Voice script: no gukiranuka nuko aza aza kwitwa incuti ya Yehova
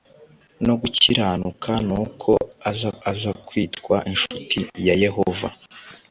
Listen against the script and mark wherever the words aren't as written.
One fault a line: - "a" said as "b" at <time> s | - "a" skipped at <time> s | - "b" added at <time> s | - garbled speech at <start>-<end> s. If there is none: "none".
none